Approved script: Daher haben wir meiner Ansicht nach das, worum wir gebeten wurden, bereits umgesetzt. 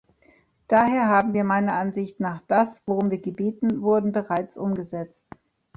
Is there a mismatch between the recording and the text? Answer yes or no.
no